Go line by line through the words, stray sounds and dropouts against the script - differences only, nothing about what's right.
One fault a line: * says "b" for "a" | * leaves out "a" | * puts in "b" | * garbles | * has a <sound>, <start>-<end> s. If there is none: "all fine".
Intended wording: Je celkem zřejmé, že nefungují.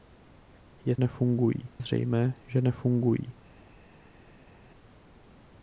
* says "nefungují" for "celkem"